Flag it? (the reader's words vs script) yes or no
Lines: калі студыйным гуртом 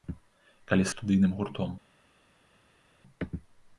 no